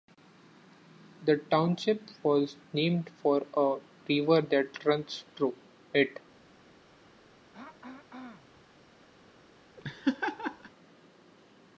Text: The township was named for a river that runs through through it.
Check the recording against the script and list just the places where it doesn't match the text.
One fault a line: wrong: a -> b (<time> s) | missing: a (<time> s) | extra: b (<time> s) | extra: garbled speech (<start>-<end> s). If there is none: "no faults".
missing: through (5.6 s)